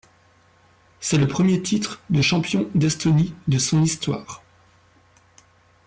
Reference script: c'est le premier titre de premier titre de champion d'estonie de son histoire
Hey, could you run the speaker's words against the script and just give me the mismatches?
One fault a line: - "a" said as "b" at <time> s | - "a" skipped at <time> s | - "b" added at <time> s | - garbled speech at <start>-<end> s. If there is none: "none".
- "premier titre de" skipped at 2.2 s